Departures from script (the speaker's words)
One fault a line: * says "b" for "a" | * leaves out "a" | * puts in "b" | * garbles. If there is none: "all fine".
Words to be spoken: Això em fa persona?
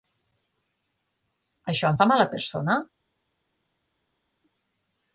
* puts in "mala"